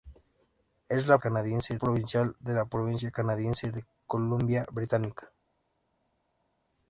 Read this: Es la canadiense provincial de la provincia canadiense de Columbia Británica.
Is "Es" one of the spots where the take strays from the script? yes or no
no